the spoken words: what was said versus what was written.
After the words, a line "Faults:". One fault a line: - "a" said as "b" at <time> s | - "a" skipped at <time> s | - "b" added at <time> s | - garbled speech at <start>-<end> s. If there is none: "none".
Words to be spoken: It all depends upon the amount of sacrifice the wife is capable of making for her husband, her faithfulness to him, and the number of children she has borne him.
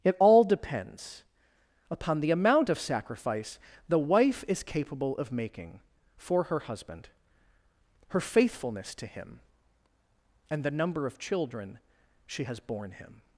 It all depends upon the amount of sacrifice the wife is capable of making for her husband, her faithfulness to him, and the number of children she has borne him.
Faults:
none